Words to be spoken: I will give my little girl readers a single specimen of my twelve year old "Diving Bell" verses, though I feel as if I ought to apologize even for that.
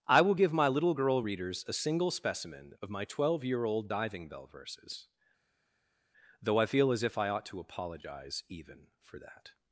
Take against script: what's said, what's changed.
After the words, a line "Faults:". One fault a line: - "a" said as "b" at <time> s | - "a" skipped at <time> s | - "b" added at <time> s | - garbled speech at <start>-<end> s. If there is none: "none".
I will give my little girl readers a single specimen of my twelve year old "Diving Bell" verses, though I feel as if I ought to apologize even for that.
Faults:
none